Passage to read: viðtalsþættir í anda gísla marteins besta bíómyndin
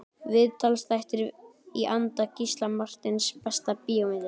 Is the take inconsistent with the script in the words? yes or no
no